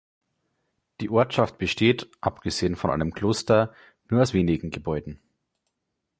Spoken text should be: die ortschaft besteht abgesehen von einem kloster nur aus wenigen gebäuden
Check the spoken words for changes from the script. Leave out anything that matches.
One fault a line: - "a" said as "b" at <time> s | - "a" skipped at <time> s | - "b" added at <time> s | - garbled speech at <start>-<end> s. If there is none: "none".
none